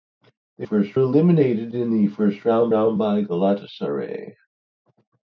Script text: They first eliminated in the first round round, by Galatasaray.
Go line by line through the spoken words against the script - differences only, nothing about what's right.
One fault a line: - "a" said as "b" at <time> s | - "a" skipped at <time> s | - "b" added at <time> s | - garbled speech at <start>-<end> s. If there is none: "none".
none